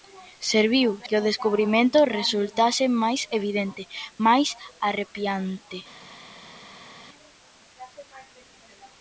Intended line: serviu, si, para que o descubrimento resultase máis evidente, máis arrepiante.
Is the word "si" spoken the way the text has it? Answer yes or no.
no